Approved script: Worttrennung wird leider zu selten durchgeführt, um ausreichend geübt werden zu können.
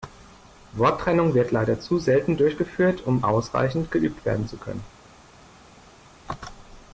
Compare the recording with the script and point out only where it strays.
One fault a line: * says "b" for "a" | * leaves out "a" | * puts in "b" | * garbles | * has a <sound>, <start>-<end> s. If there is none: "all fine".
all fine